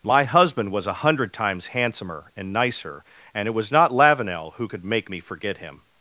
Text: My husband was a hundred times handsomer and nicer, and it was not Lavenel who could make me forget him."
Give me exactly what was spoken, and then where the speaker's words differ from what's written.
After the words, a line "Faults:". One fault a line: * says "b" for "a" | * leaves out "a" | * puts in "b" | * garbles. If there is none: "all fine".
My husband was a hundred times handsomer and nicer, and it was not Lavenel who could make me forget him."
Faults:
all fine